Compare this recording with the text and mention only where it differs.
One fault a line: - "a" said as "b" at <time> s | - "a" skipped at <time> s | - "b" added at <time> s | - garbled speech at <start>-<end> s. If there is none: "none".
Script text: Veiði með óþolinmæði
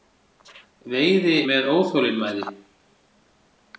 none